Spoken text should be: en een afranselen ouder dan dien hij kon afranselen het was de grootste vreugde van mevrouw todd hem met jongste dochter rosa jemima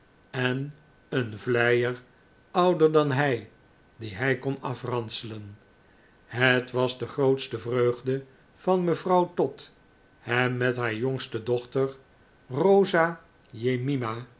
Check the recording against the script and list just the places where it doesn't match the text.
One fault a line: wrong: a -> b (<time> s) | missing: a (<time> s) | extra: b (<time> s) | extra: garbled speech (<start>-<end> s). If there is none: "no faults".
wrong: afranselen -> vleier (1.4 s)
extra: hij (3.1 s)
extra: haar (10.8 s)